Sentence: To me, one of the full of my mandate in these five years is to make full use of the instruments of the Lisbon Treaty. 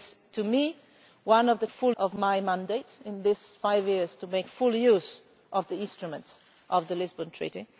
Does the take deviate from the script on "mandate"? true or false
false